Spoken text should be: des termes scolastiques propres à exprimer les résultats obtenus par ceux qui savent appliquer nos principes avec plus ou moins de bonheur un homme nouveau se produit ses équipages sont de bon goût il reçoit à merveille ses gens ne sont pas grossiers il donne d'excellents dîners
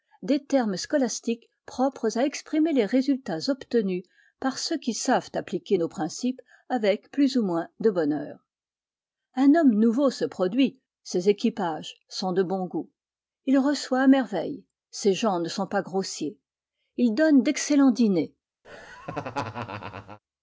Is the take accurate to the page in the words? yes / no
yes